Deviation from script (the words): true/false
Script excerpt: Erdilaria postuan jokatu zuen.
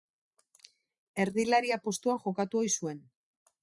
true